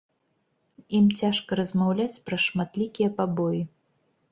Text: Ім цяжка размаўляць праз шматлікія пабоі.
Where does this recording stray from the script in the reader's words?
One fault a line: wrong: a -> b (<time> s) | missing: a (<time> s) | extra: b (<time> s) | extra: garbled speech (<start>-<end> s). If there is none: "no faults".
no faults